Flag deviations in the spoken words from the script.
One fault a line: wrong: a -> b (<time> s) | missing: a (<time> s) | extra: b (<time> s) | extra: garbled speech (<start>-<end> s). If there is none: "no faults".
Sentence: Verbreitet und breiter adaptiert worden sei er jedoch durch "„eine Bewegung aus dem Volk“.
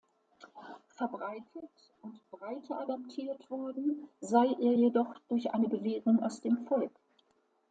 no faults